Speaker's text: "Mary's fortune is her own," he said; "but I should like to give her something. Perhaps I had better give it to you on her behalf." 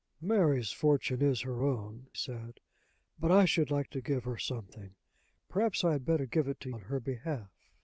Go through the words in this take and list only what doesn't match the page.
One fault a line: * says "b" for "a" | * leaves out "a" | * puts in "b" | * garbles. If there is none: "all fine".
* leaves out "he"
* leaves out "you"